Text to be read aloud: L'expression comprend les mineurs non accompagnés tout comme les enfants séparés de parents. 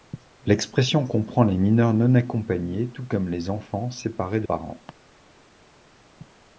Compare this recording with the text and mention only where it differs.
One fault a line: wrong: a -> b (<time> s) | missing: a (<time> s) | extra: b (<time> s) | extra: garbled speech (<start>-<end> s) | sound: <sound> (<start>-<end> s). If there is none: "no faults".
no faults